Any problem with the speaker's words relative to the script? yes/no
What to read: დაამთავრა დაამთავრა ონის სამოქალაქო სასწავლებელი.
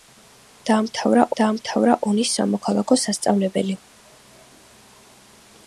no